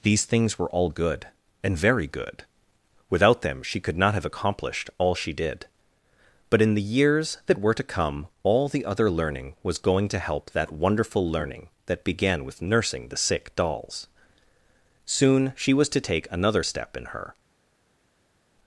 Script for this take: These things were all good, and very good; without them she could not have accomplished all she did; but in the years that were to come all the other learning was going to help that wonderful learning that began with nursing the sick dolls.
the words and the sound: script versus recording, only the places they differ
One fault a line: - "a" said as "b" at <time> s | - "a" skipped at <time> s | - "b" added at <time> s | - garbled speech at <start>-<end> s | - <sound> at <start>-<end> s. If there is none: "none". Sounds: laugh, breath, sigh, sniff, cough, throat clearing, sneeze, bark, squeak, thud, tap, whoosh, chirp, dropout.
- "Soon she was to take another step in her" added at 15.1 s